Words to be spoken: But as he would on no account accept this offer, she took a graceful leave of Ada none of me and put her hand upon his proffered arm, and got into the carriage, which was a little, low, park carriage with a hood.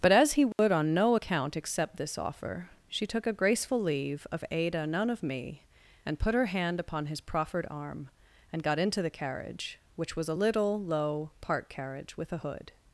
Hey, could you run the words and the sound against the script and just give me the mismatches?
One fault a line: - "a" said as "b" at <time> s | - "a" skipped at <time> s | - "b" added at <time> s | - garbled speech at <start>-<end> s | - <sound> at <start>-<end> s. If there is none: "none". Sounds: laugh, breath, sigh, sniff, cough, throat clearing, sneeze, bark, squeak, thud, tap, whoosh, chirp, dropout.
- dropout at 0.5-0.6 s